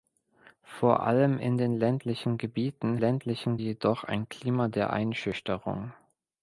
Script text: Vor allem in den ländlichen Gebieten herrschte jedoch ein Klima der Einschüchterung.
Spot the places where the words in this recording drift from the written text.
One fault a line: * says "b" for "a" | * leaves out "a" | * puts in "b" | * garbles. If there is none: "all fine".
* says "ländlichen" for "herrschte"